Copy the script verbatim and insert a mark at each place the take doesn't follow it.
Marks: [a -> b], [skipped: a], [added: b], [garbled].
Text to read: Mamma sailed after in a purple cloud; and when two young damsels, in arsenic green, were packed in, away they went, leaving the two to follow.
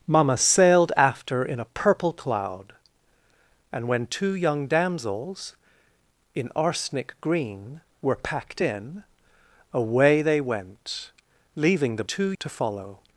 Mamma sailed after in a purple cloud; and when two young damsels, in arsenic green, were packed in, away they went, leaving the two to follow.